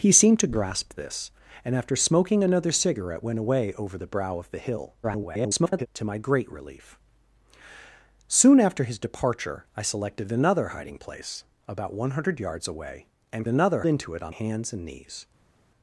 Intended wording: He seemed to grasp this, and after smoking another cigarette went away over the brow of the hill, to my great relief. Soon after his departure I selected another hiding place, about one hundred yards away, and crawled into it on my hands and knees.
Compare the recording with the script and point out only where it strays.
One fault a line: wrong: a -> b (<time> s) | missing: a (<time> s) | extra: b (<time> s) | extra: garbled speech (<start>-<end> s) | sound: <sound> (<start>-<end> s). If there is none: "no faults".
extra: garbled speech (5.0-5.9 s)
wrong: crawled -> another (13.5 s)
missing: my (14.3 s)